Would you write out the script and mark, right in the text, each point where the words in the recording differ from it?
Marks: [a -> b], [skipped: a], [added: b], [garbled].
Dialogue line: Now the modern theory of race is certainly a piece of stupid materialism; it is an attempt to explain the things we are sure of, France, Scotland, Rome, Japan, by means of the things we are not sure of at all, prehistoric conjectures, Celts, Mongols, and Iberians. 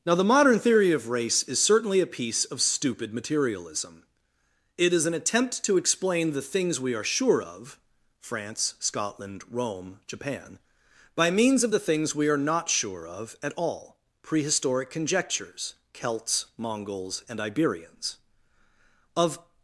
Now the modern theory of race is certainly a piece of stupid materialism; it is an attempt to explain the things we are sure of, France, Scotland, Rome, Japan, by means of the things we are not sure of at all, prehistoric conjectures, Celts, Mongols, and Iberians. [added: Of]